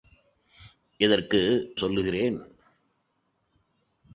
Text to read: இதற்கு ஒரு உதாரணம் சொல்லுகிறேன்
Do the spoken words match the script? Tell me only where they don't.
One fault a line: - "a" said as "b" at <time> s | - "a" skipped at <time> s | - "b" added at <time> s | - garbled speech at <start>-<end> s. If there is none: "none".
- "ஒரு உதாரணம்" skipped at 1.7 s